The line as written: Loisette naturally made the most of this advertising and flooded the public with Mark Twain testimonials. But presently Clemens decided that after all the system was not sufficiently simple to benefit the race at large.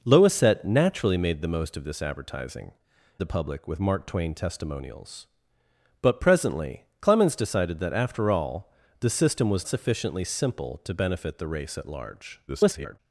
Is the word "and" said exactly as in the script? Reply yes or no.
no